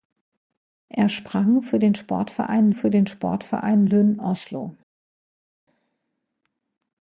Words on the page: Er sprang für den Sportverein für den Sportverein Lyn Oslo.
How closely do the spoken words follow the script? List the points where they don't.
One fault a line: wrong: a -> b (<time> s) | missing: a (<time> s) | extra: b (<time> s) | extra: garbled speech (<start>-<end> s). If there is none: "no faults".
no faults